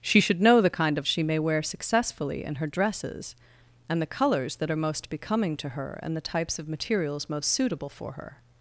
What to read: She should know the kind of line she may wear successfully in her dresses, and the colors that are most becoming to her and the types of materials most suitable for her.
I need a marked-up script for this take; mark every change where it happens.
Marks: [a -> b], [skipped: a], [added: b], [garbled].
She should know the kind of [skipped: line] she may wear successfully in her dresses, and the colors that are most becoming to her and the types of materials most suitable for her.